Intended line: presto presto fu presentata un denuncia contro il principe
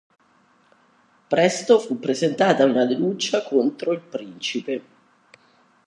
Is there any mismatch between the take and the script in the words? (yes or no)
yes